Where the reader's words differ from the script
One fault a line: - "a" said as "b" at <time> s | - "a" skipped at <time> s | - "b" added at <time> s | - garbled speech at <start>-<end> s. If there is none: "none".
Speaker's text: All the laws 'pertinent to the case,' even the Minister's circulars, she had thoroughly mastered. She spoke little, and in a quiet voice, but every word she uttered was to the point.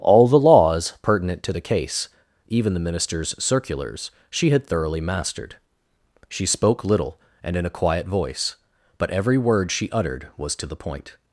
none